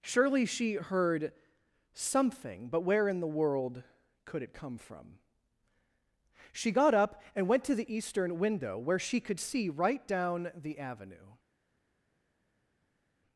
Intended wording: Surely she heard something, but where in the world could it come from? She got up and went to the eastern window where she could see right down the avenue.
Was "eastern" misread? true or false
false